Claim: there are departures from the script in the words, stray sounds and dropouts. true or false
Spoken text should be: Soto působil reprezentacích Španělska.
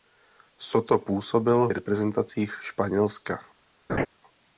true